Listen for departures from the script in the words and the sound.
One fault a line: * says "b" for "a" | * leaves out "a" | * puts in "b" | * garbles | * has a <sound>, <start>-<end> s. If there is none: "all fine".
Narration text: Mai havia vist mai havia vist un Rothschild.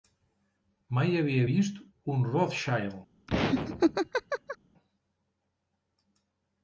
* leaves out "mai havia vist"
* has a laugh, 3.3-4.6 s